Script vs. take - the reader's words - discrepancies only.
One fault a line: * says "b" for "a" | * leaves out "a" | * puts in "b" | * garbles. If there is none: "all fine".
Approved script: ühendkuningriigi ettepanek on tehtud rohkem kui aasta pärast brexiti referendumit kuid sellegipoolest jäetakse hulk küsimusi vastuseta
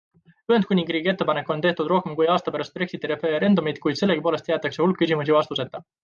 all fine